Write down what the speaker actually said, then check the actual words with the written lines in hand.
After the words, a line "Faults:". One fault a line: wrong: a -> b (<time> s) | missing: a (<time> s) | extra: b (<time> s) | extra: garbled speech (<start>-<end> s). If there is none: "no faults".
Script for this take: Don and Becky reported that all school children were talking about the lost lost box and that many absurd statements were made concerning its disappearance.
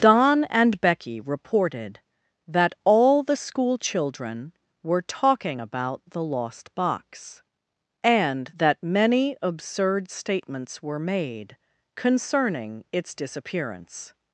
Don and Becky reported that all the school children were talking about the lost box and that many absurd statements were made concerning its disappearance.
Faults:
extra: the (3.2 s)
missing: lost (6.7 s)